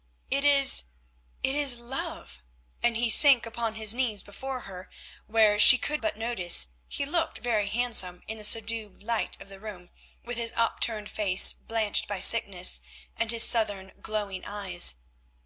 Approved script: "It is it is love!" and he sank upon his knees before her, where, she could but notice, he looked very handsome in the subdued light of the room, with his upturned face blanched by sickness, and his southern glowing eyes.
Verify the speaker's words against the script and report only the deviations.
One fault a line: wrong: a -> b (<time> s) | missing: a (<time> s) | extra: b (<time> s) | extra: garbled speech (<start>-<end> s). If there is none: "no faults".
no faults